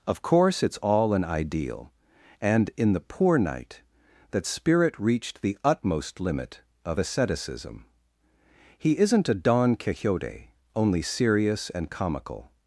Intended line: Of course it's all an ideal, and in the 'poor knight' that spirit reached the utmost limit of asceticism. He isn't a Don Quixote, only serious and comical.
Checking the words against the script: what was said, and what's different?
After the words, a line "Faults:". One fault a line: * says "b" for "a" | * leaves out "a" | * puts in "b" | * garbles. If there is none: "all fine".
Of course it's all an ideal, and in the 'poor knight' that spirit reached the utmost limit of asceticism. He isn't a Don Quixote, only serious and comical.
Faults:
all fine